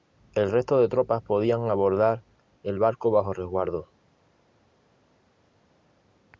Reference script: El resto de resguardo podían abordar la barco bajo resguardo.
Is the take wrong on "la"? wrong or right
wrong